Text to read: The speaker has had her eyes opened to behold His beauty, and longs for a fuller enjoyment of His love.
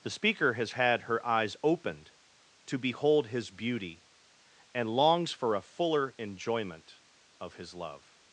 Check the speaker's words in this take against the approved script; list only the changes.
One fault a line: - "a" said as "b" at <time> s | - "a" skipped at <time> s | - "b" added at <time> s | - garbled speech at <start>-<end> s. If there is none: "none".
none